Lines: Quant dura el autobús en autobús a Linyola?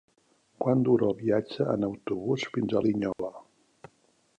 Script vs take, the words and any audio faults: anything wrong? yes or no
yes